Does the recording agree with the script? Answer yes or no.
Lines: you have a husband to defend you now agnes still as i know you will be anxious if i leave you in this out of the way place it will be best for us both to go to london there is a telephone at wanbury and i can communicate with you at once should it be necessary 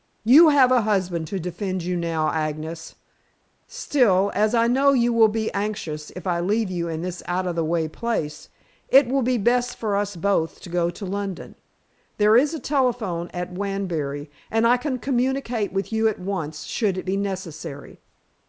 yes